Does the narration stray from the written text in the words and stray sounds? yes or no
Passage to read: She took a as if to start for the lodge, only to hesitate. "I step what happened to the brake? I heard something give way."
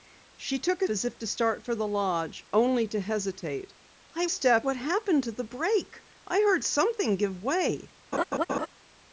yes